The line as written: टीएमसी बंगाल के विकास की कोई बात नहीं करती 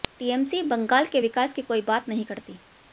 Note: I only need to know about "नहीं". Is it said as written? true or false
true